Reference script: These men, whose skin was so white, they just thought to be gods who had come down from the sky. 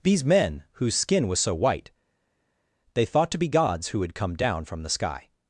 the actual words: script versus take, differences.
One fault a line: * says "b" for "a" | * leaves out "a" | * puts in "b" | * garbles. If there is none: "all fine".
* leaves out "just"